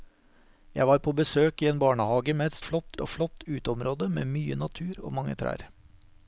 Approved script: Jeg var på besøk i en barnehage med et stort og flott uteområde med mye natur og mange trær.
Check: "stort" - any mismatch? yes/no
yes